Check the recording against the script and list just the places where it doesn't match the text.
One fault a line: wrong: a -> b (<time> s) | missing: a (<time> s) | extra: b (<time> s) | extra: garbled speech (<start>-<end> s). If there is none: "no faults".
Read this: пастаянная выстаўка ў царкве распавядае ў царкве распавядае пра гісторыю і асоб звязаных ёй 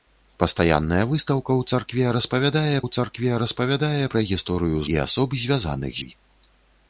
no faults